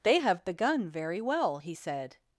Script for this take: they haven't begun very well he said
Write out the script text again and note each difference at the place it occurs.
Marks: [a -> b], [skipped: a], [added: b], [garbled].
they [haven't -> have] begun very well he said